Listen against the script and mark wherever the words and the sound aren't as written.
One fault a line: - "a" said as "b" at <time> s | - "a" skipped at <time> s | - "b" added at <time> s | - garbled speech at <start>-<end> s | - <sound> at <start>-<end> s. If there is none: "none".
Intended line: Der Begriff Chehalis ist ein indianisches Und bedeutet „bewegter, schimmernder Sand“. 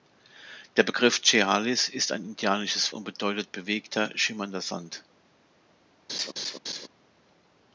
- laugh at 6.1-6.9 s